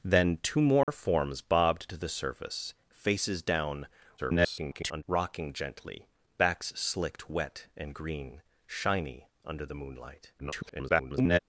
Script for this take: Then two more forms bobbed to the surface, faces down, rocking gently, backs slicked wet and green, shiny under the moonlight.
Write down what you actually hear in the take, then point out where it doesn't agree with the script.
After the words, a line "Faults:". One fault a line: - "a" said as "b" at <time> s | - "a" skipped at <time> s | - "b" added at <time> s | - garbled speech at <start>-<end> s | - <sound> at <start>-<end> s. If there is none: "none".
Then two more forms bobbed to the surface, faces down, [garbled] rocking gently, backs slicked wet and green, shiny under the moonlight. [garbled]
Faults:
- dropout at 0.8-0.9 s
- garbled speech at 4.2-5.0 s
- garbled speech at 10.4-11.4 s